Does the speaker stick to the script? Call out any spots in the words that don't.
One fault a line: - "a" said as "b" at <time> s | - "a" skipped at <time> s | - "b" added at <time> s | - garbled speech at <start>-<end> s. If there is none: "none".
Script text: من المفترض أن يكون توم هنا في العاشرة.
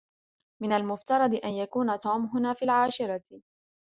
none